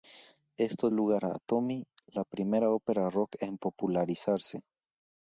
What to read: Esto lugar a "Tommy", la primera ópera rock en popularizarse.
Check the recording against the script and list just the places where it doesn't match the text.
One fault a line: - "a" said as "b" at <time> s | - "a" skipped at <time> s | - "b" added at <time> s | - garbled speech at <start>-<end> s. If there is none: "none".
none